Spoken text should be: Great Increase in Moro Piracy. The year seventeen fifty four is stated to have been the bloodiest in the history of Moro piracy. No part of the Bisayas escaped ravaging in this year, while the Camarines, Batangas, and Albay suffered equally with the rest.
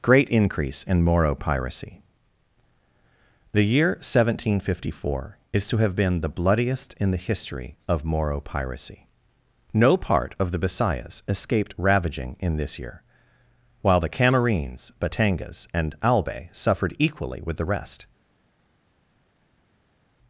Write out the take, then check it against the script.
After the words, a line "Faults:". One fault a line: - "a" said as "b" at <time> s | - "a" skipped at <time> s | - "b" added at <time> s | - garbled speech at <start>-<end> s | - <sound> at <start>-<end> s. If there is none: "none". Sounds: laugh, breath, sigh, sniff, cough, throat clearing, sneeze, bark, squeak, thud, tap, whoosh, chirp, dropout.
Great Increase in Moro Piracy. The year seventeen fifty four is to have been the bloodiest in the history of Moro piracy. No part of the Bisayas escaped ravaging in this year, while the Camarines, Batangas, and Albay suffered equally with the rest.
Faults:
- "stated" skipped at 5.7 s